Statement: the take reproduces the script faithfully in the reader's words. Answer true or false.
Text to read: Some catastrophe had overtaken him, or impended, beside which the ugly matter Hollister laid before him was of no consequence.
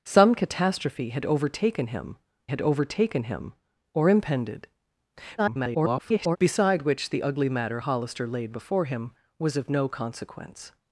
false